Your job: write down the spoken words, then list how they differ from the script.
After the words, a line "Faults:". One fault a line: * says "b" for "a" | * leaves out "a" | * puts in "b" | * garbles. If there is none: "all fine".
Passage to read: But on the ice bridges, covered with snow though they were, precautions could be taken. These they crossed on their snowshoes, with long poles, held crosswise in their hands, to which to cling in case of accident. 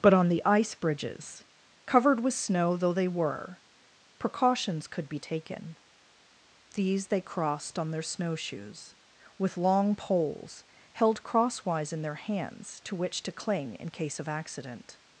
But on the ice bridges, covered with snow though they were, precautions could be taken. These they crossed on their snowshoes, with long poles, held crosswise in their hands, to which to cling in case of accident.
Faults:
all fine